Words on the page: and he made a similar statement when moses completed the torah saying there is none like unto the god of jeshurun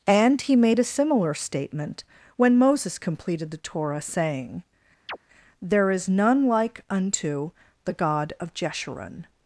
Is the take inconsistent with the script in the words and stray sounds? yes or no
yes